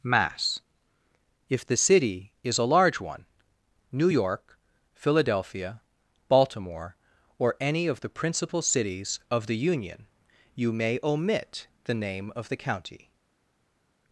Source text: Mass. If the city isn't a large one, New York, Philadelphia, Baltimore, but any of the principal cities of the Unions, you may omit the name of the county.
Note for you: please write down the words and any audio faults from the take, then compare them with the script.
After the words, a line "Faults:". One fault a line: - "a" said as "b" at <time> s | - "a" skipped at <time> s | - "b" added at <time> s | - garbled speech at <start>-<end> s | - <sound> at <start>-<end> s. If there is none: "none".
Mass. If the city is a large one, New York, Philadelphia, Baltimore, or any of the principal cities of the Union, you may omit the name of the county.
Faults:
- "isn't" said as "is" at 2.4 s
- "but" said as "or" at 7.4 s
- "Unions" said as "Union" at 9.6 s